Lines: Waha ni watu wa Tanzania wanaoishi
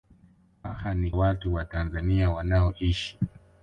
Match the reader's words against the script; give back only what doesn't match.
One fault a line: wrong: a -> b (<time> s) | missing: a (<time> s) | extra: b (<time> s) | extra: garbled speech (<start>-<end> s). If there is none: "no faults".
no faults